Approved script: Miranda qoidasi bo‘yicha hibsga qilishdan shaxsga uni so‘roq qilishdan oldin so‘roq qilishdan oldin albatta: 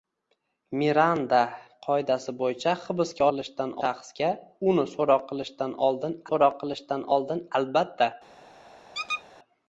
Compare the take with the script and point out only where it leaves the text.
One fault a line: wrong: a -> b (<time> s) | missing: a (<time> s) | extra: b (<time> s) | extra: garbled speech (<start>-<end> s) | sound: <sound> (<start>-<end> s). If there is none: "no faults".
sound: squeak (8.9-9.2 s)